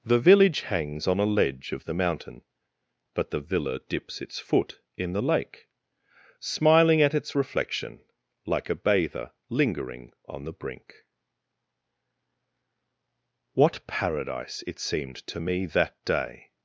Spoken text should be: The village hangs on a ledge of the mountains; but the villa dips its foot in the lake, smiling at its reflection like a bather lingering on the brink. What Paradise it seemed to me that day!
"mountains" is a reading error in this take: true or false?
true